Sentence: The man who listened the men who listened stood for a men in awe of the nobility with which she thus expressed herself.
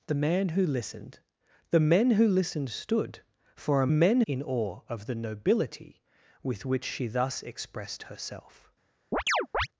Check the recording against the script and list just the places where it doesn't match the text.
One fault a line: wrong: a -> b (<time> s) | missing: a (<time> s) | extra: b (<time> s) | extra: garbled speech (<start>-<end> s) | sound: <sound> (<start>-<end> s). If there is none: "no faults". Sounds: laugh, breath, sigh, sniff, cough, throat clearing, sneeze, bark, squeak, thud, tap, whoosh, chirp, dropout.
sound: chirp (9.1-9.7 s)